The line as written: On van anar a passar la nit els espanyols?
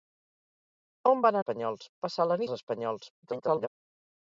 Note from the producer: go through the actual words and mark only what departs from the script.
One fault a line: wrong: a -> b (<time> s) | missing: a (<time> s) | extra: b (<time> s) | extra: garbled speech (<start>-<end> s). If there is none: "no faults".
wrong: anar -> espanyols (1.4 s)
missing: nit (2.4 s)
extra: garbled speech (3.2-3.7 s)